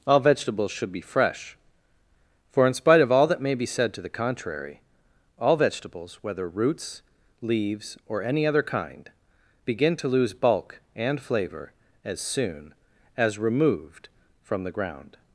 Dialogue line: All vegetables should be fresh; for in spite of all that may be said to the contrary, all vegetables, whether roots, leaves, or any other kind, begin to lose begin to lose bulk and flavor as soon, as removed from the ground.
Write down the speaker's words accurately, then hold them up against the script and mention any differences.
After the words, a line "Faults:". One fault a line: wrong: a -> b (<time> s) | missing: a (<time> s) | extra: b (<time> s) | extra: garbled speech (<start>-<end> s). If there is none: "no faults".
All vegetables should be fresh; for in spite of all that may be said to the contrary, all vegetables, whether roots, leaves, or any other kind, begin to lose bulk and flavor as soon, as removed from the ground.
Faults:
missing: begin to lose (10.3 s)